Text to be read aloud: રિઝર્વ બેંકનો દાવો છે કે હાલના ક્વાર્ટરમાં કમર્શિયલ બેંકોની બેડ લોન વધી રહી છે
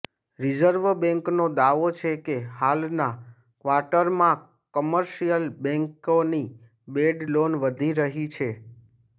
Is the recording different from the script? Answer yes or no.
no